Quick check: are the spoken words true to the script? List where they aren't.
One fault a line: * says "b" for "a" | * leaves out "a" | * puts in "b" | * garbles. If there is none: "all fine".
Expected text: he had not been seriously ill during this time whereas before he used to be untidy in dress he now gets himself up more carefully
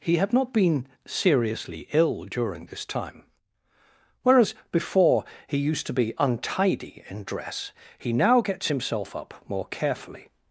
all fine